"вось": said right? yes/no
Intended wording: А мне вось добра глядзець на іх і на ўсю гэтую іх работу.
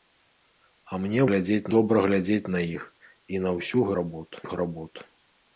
no